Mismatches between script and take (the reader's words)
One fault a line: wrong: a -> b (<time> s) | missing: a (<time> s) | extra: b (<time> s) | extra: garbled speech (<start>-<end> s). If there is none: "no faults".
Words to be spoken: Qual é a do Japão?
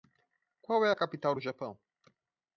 extra: capital (0.9 s)